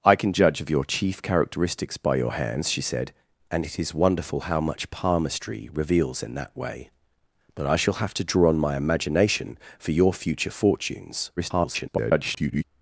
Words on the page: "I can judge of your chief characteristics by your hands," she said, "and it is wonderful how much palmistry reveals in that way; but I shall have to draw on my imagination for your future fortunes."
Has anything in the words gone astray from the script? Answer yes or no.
yes